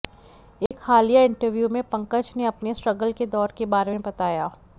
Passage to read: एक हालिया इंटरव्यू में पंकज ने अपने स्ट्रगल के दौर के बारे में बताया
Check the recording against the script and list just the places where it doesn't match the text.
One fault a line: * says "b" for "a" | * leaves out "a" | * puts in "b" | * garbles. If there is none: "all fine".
all fine